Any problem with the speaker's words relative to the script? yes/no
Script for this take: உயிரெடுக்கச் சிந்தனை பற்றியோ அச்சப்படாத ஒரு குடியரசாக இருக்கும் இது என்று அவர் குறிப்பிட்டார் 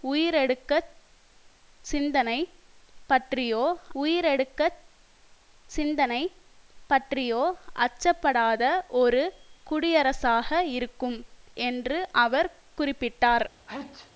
yes